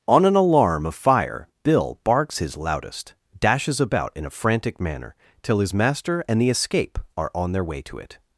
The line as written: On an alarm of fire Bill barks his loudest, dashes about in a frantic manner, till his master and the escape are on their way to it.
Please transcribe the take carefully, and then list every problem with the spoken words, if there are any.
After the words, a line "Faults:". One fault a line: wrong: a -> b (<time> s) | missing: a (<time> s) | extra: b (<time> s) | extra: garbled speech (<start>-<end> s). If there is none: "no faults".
On an alarm of fire Bill barks his loudest, dashes about in a frantic manner, till his master and the escape are on their way to it.
Faults:
no faults